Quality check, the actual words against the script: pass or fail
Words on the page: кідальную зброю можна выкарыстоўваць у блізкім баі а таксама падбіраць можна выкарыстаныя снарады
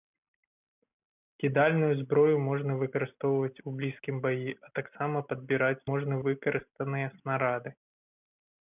pass